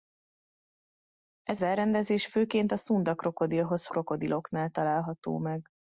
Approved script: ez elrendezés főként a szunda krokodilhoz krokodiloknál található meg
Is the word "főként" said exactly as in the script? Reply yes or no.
yes